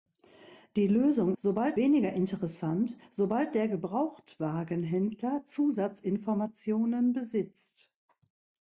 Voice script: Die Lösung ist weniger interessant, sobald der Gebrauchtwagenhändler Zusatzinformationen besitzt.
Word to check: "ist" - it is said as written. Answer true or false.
false